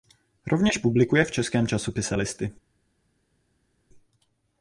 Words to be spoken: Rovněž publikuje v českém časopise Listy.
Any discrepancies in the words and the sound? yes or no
no